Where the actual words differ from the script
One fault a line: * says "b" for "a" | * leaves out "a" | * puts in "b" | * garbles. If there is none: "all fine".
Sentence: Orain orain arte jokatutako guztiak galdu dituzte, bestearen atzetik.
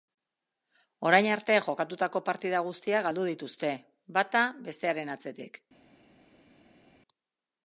* leaves out "orain"
* puts in "partida"
* puts in "bata"